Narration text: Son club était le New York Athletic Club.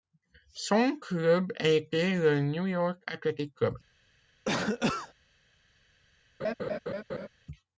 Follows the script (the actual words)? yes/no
yes